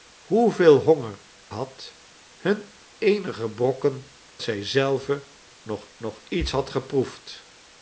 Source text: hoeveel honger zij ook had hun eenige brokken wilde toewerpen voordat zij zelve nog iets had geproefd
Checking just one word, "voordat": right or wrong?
wrong